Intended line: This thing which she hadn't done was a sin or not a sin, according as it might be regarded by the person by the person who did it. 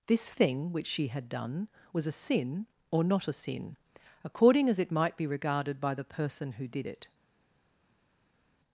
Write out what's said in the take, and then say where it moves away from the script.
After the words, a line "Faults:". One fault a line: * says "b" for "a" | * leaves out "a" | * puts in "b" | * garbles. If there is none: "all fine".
This thing which she had done was a sin or not a sin, according as it might be regarded by the person who did it.
Faults:
* says "had" for "hadn't"
* leaves out "by the person"